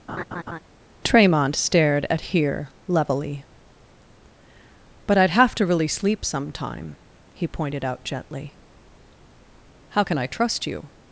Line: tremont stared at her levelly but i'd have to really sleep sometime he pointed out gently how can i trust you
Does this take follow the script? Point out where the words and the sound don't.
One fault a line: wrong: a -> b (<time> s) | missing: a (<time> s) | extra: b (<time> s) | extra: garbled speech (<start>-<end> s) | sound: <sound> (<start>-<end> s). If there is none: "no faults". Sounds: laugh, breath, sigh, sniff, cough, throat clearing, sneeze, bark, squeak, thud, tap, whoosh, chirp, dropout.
sound: laugh (0.1-0.6 s)
wrong: her -> here (2.2 s)